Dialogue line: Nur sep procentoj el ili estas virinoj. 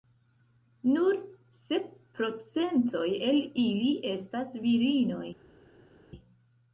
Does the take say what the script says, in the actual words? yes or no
yes